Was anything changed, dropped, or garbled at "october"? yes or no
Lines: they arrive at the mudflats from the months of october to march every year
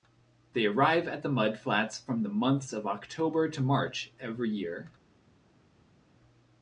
no